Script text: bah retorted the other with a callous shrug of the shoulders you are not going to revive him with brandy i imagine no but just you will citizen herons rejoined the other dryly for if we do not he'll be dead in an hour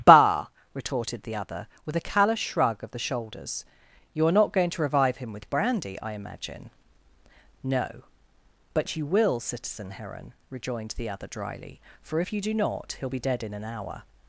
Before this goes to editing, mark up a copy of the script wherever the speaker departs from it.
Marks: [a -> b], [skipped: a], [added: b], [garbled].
bah retorted the other with a callous shrug of the shoulders you are not going to revive him with brandy i imagine no but [skipped: just] you will citizen [herons -> heron] rejoined the other dryly for if [we -> you] do not he'll be dead in an hour